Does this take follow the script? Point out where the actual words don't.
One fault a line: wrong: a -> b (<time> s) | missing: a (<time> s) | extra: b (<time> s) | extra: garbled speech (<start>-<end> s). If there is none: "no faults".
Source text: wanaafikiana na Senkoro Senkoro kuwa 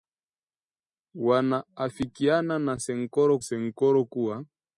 no faults